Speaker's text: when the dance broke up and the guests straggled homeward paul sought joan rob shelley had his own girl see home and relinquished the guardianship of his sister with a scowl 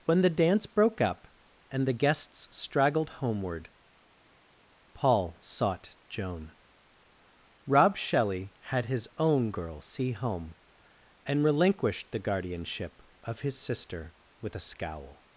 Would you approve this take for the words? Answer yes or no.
yes